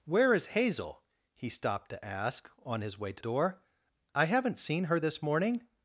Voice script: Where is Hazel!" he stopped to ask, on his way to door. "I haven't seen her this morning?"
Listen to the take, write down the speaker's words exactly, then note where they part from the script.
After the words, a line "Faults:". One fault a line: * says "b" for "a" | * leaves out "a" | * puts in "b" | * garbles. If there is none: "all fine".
Where is Hazel!" he stopped to ask, on his way to door. "I haven't seen her this morning?"
Faults:
all fine